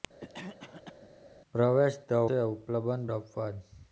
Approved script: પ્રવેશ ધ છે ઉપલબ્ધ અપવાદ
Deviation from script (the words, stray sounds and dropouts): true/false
true